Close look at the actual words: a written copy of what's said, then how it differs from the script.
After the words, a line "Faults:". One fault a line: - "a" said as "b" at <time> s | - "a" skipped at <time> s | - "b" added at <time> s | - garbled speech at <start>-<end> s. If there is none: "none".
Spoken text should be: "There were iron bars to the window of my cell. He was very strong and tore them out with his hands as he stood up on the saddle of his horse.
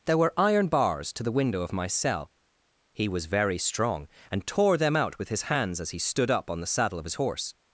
"There were iron bars to the window of my cell. He was very strong and tore them out with his hands as he stood up on the saddle of his horse.
Faults:
none